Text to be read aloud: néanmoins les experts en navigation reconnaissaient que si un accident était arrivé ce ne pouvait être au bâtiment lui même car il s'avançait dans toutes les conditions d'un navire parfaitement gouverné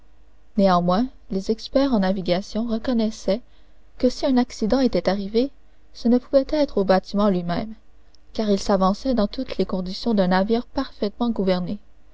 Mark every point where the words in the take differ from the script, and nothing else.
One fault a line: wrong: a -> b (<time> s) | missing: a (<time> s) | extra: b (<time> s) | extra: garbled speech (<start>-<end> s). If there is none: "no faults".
no faults